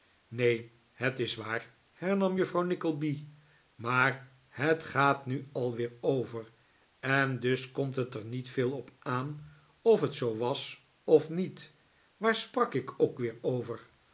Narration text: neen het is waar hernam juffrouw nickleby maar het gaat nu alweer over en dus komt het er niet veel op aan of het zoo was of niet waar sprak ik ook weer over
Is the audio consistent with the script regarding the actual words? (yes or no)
yes